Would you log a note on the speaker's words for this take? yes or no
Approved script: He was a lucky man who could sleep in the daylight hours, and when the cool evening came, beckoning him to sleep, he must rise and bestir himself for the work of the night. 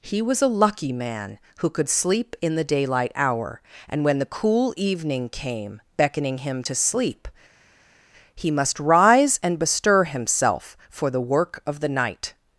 yes